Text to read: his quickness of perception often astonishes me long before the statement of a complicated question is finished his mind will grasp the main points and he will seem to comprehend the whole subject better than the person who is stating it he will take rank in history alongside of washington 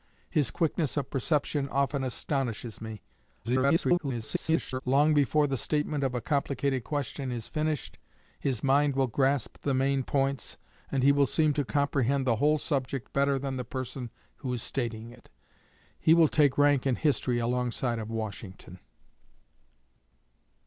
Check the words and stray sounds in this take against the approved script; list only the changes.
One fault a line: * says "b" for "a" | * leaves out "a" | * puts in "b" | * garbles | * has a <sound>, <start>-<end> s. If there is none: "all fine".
* garbles